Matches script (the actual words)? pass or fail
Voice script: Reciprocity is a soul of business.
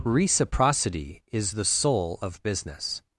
fail